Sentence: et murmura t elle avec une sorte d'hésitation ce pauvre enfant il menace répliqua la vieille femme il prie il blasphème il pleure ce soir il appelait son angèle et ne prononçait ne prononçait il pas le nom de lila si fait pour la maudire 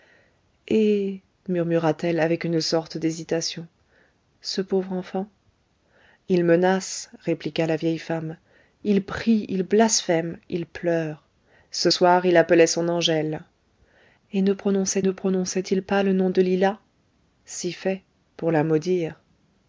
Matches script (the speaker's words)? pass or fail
pass